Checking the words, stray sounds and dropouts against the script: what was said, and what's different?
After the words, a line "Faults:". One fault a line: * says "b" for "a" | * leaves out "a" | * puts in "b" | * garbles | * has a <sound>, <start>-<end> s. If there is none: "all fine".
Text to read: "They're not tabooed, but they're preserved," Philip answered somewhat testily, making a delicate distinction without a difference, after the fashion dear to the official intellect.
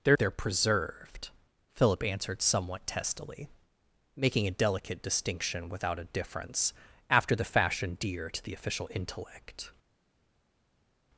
"They're they're preserved," Philip answered somewhat testily, making a delicate distinction without a difference, after the fashion dear to the official intellect.
Faults:
* leaves out "not tabooed but"